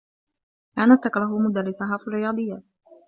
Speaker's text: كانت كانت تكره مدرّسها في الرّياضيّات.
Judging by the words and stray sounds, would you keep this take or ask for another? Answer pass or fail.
fail